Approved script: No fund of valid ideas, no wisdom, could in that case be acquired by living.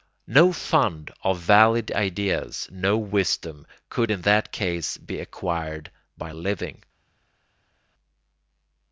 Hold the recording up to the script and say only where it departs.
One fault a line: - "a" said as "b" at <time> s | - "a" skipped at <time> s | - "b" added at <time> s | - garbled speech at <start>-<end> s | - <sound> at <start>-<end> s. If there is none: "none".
none